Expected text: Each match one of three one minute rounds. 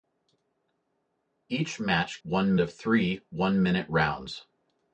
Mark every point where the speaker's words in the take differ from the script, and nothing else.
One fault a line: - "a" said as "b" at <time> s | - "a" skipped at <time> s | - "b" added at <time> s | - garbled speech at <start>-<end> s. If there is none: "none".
none